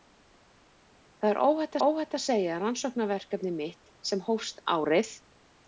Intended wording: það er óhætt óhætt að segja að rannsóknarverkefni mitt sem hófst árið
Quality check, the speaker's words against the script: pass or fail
pass